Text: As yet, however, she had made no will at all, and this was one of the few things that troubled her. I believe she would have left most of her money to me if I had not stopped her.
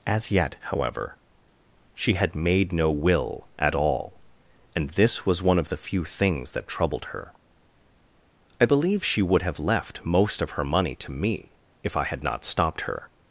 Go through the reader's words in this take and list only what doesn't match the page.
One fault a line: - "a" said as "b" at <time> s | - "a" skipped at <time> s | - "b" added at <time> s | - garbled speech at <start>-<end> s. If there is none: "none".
none